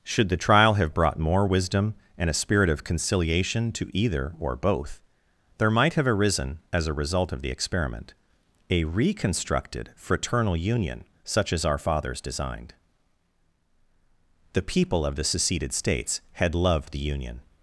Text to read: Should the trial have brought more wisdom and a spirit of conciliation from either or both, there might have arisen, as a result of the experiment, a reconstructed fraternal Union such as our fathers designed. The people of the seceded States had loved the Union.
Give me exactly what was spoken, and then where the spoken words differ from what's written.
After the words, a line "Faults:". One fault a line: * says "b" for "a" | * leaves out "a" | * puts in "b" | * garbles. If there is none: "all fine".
Should the trial have brought more wisdom and a spirit of conciliation to either or both, there might have arisen, as a result of the experiment, a reconstructed fraternal Union such as our fathers designed. The people of the seceded States had loved the Union.
Faults:
* says "to" for "from"